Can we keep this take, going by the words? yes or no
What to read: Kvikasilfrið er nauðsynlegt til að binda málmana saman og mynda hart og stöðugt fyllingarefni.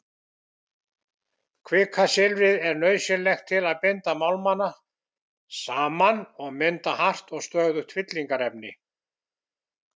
yes